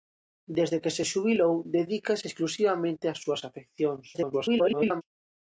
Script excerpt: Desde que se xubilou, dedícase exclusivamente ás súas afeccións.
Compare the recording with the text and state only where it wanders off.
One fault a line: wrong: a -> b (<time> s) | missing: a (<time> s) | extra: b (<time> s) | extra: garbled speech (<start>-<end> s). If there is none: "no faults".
extra: garbled speech (4.1-5.0 s)